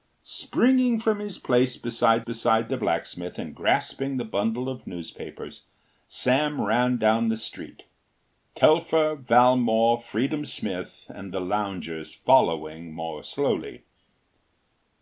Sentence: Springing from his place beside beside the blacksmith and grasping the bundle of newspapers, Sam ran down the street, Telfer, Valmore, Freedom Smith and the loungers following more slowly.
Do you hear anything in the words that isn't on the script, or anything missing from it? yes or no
no